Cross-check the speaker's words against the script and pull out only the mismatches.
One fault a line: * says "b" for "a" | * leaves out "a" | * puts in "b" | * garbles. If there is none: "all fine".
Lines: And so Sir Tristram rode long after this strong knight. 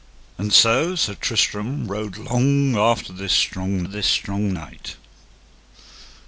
* puts in "this strong"